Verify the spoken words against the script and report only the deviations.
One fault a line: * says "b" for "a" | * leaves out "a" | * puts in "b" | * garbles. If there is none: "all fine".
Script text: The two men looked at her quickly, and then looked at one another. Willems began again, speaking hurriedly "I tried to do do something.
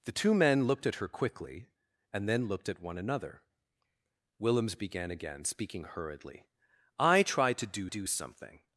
all fine